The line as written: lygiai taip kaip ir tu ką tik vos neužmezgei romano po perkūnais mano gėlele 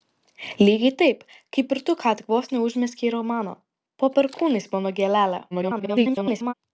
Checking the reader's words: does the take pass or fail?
fail